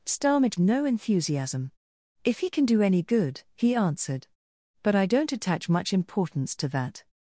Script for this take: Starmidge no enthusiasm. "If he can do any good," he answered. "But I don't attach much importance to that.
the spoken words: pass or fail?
pass